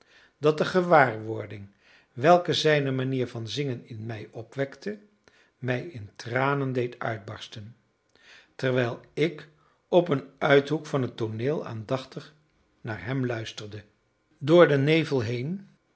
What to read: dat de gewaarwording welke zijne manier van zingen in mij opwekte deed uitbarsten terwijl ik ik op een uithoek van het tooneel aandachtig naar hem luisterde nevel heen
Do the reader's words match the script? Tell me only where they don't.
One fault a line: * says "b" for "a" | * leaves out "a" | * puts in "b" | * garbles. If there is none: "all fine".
* puts in "mij in tranen"
* leaves out "ik"
* puts in "door den"